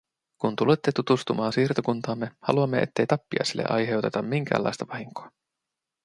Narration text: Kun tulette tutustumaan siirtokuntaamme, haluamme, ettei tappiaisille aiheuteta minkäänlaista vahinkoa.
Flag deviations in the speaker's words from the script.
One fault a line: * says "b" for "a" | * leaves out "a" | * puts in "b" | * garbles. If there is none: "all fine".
all fine